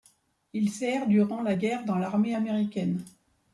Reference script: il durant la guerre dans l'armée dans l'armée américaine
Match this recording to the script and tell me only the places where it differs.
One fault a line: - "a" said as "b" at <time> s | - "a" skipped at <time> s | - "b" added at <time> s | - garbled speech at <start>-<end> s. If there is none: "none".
- "sert" added at 0.7 s
- "dans l'armée" skipped at 2.4 s